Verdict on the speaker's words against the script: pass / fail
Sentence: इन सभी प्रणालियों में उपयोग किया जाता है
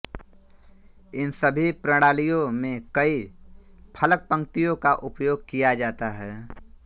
fail